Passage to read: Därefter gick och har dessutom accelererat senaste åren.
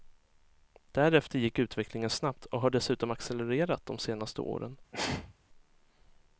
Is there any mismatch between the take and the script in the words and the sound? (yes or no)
yes